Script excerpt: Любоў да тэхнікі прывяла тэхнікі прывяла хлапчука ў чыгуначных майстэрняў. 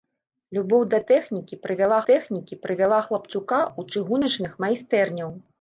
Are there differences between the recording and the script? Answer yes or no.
no